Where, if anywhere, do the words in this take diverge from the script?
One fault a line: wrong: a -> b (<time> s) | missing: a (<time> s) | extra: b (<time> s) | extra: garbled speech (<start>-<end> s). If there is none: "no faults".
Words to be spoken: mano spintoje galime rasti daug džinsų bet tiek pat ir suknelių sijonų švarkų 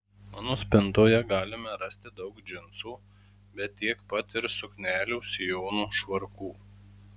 no faults